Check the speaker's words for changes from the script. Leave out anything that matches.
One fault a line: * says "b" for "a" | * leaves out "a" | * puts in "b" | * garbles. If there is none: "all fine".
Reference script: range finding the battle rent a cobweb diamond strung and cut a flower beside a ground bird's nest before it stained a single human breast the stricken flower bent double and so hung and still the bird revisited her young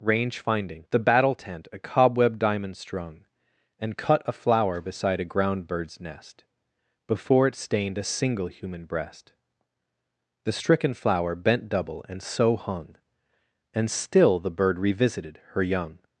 * says "tent" for "rent"